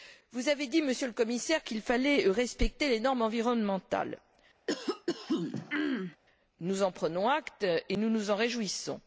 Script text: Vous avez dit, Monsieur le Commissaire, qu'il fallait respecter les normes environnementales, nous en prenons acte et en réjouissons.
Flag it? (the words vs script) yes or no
yes